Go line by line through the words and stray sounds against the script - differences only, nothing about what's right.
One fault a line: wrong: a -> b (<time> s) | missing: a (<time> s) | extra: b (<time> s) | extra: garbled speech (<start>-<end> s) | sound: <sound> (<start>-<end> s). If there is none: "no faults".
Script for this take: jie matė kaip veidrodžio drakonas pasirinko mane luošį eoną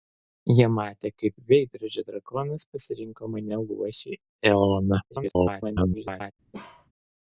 extra: garbled speech (5.1-6.3 s)
sound: bark (6.5-6.9 s)